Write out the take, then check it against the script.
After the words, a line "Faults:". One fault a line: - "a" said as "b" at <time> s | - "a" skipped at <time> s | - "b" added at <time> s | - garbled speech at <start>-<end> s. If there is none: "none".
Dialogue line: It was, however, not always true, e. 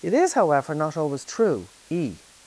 It is, however, not always true, e.
Faults:
- "was" said as "is" at 0.1 s